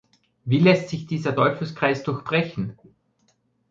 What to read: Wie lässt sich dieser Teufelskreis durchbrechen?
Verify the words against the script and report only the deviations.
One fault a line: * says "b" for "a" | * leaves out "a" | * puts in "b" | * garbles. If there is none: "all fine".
all fine